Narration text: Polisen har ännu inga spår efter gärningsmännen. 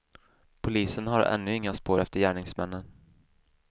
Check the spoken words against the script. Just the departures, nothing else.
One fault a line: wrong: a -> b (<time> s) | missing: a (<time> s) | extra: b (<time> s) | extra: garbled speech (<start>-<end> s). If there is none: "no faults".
no faults